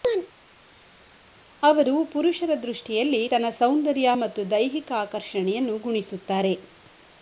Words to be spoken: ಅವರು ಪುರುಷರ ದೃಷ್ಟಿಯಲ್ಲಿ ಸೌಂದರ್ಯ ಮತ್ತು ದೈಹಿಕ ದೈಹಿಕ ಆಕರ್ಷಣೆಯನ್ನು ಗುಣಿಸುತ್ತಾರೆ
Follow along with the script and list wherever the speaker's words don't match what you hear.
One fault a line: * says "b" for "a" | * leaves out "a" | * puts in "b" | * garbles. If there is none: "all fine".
* puts in "ತನ್ನ"
* leaves out "ದೈಹಿಕ"